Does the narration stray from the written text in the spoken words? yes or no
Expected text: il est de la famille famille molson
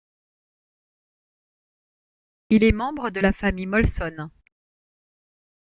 yes